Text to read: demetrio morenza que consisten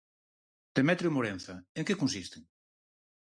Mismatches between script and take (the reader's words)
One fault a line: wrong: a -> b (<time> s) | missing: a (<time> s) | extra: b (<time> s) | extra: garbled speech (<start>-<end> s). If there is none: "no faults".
extra: en (1.8 s)